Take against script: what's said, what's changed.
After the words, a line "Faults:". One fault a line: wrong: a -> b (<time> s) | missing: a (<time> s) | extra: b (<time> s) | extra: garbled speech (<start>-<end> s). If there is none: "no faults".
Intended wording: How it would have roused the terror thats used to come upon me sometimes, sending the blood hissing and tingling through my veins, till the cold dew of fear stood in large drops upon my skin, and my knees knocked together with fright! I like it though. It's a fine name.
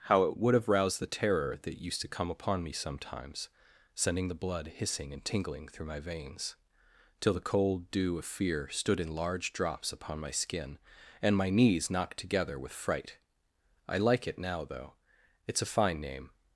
How it would have roused the terror that used to come upon me sometimes, sending the blood hissing and tingling through my veins, till the cold dew of fear stood in large drops upon my skin, and my knees knocked together with fright! I like it now though. It's a fine name.
Faults:
wrong: thats -> that (1.6 s)
extra: now (14.4 s)